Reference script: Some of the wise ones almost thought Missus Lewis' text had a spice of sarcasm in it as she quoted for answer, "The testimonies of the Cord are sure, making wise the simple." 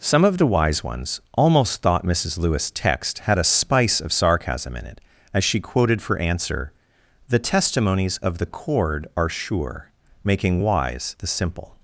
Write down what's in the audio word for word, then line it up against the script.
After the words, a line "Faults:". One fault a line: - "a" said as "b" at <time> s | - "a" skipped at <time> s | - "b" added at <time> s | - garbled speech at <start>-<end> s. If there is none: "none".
Some of the wise ones almost thought Missus Lewis' text had a spice of sarcasm in it as she quoted for answer, "The testimonies of the Cord are sure, making wise the simple."
Faults:
none